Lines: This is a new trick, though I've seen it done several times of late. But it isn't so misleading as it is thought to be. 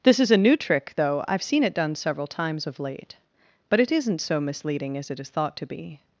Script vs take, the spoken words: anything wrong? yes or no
no